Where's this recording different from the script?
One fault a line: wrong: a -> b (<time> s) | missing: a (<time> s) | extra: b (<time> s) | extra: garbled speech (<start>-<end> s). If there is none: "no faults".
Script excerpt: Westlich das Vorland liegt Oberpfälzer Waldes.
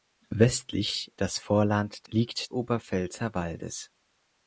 no faults